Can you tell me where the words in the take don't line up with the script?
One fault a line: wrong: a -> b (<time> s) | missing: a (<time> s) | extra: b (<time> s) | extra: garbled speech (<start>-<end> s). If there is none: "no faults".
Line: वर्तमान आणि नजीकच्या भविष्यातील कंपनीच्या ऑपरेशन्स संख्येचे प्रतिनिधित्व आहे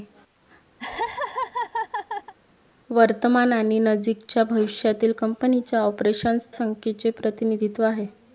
no faults